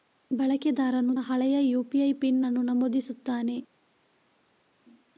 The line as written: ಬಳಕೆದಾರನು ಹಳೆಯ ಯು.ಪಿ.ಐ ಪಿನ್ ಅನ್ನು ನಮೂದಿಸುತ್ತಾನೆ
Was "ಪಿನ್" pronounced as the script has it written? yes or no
yes